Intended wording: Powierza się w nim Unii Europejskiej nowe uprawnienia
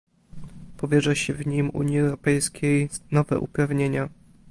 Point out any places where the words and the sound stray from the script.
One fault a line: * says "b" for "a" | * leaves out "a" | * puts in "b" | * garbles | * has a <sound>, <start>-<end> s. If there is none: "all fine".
all fine